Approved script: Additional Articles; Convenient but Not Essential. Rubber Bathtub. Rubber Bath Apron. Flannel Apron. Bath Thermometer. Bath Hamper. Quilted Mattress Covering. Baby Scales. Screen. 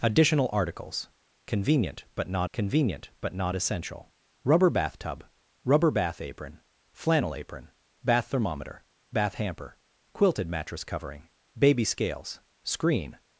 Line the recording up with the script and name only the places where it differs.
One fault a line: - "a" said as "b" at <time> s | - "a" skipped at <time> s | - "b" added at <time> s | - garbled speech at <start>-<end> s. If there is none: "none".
- "Convenient but Not" added at 2.5 s